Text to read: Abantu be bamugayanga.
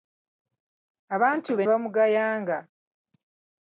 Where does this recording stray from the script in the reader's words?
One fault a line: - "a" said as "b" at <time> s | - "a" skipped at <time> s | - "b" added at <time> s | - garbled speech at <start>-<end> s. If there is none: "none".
none